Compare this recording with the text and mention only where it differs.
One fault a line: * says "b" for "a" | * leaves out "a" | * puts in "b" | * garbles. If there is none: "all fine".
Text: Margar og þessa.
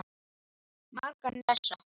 all fine